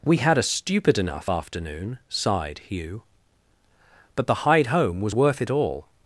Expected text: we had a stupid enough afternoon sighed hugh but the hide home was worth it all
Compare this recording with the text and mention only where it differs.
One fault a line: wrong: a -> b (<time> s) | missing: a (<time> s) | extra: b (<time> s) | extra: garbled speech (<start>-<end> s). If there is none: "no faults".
no faults